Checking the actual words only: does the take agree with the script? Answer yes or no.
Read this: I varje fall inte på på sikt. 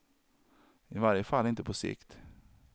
no